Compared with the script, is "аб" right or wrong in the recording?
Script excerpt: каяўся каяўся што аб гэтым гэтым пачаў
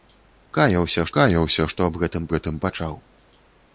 right